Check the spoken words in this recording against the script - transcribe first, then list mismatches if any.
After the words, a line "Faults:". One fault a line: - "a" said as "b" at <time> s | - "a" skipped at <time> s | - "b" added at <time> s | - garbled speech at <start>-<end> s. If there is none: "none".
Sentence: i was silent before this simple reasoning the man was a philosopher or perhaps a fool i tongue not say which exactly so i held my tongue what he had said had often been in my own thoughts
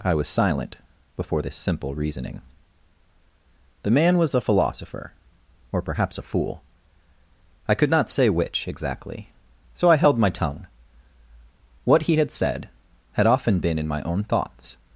i was silent before this simple reasoning the man was a philosopher or perhaps a fool i could not say which exactly so i held my tongue what he had said had often been in my own thoughts
Faults:
- "tongue" said as "could" at 7.7 s